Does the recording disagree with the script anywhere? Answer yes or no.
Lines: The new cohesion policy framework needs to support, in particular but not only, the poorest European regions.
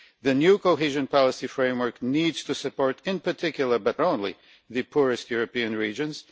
yes